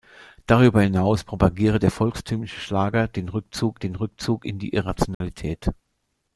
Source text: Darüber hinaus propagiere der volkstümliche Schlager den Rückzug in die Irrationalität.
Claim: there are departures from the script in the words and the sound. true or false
true